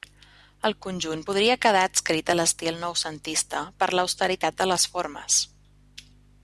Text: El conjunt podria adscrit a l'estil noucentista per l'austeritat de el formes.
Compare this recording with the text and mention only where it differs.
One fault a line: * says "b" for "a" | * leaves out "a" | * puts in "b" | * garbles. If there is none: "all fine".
* puts in "quedar"
* says "les" for "el"